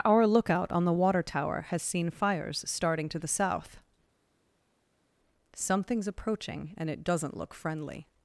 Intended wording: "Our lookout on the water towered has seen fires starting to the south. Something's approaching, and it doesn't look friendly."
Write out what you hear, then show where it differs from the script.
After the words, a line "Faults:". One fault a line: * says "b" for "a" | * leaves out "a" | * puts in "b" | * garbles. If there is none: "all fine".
"Our lookout on the water tower has seen fires starting to the south. Something's approaching, and it doesn't look friendly."
Faults:
* says "tower" for "towered"